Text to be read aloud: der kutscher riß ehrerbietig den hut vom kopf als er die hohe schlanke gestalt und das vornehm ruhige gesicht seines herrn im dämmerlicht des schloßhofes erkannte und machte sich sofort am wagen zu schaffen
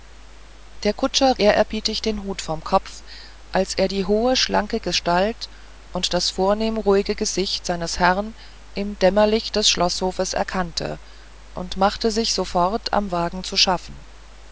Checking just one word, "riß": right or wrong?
wrong